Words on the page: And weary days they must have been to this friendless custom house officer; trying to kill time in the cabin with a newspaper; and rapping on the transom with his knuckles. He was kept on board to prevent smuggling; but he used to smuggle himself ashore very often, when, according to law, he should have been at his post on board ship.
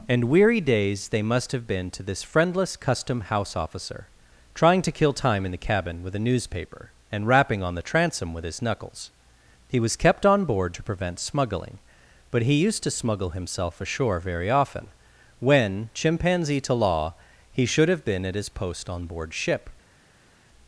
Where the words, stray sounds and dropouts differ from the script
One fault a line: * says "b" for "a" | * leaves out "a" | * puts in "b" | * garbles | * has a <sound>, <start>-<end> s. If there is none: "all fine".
* says "chimpanzee" for "according"